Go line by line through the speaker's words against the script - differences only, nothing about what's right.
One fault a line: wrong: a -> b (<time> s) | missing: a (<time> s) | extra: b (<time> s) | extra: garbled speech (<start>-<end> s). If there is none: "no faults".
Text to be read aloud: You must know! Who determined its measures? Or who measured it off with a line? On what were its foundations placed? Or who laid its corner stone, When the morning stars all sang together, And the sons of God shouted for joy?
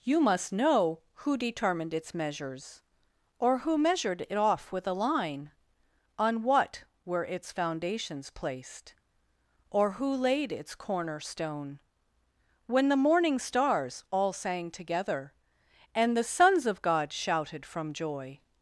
wrong: for -> from (17.7 s)